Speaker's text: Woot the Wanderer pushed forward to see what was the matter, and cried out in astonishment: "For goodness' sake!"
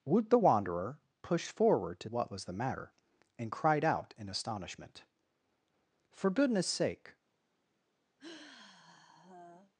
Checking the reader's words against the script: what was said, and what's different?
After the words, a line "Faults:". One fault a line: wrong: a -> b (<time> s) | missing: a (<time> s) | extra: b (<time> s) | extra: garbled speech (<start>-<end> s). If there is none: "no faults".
Woot the Wanderer pushed forward to what was the matter, and cried out in astonishment: "For goodness' sake!"
Faults:
missing: see (2.1 s)